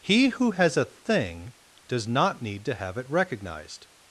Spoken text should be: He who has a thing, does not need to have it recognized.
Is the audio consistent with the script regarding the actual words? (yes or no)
yes